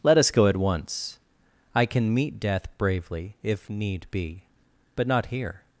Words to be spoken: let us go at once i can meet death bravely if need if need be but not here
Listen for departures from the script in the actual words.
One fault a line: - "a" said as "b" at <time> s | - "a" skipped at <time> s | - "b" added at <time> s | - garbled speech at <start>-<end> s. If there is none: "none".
- "if need" skipped at 4.1 s